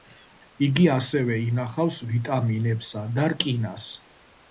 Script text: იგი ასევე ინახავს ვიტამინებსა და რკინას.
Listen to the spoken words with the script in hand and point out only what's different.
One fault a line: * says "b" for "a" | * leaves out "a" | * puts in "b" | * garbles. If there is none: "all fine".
all fine